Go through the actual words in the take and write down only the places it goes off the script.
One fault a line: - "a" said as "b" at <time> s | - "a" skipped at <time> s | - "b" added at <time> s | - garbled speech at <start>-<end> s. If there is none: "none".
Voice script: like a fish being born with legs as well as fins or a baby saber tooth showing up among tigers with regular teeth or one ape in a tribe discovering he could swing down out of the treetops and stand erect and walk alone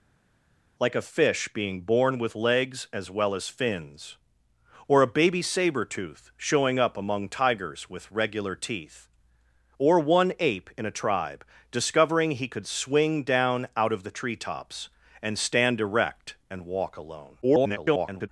- garbled speech at 17.4-18.3 s